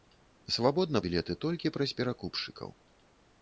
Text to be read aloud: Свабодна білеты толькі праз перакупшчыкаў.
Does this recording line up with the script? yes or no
yes